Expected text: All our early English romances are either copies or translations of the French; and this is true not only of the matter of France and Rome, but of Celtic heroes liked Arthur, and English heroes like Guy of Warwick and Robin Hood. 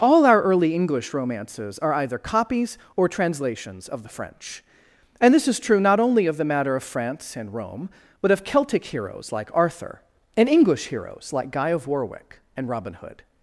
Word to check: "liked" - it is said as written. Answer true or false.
false